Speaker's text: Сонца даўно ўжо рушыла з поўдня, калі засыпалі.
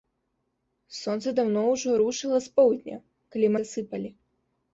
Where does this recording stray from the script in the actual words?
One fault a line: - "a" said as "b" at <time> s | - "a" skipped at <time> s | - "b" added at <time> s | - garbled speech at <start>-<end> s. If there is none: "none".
none